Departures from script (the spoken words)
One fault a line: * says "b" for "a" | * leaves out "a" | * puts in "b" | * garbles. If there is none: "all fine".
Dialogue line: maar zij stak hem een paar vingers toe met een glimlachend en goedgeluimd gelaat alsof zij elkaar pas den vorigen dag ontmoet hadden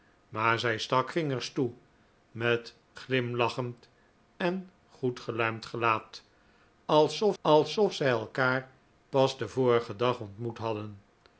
* leaves out "hem een paar"
* leaves out "een"
* puts in "alsof"